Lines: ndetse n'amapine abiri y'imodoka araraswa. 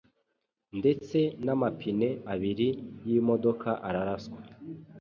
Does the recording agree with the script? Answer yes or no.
yes